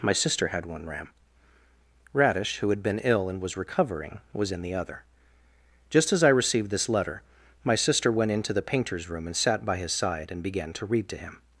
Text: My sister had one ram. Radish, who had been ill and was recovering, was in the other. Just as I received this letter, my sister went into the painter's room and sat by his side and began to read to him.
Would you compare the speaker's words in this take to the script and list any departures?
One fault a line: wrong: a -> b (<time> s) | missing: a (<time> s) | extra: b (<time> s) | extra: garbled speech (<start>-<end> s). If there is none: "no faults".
no faults